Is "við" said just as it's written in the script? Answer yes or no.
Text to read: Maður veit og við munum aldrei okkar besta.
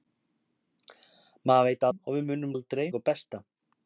yes